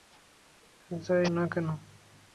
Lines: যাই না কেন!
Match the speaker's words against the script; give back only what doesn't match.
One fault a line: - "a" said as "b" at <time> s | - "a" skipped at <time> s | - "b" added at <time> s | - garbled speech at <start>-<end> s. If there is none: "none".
none